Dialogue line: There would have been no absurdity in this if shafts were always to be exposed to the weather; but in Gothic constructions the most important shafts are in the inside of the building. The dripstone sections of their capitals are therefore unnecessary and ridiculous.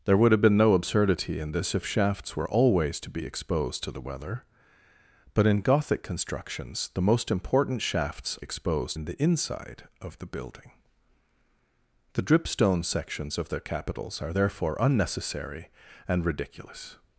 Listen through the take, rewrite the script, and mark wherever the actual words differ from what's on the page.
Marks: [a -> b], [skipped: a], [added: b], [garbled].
There would have been no absurdity in this if shafts were always to be exposed to the weather; but in Gothic constructions the most important shafts [are -> exposed] in the inside of the building. The dripstone sections of their capitals are therefore unnecessary and ridiculous.